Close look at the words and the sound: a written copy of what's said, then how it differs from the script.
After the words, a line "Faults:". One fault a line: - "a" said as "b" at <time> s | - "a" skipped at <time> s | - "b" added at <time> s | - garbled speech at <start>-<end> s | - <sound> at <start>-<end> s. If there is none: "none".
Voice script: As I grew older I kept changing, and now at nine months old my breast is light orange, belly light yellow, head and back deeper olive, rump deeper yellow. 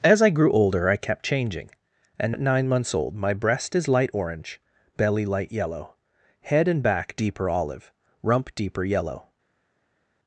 As I grew older I kept changing, and at nine months old my breast is light orange, belly light yellow, head and back deeper olive, rump deeper yellow.
Faults:
- "now" skipped at 2.3 s